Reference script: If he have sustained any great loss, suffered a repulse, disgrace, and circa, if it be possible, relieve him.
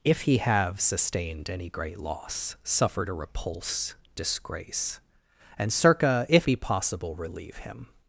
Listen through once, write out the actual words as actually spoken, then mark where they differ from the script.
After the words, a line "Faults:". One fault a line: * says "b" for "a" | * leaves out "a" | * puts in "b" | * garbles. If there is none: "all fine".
If he have sustained any great loss, suffered a repulse, disgrace, and circa, if be possible, relieve him.
Faults:
* leaves out "it"